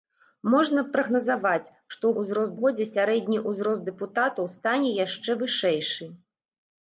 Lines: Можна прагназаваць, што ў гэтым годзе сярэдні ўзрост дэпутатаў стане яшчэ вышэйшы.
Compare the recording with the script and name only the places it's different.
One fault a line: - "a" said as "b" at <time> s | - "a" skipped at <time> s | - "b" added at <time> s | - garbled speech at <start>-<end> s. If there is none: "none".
- "гэтым" said as "ўзрост" at 2.2 s